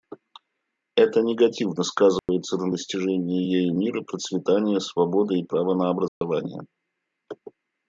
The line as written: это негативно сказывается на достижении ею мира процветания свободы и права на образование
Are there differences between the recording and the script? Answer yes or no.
no